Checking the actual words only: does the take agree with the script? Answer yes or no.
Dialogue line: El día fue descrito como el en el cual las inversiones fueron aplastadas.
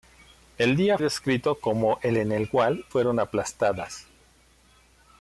no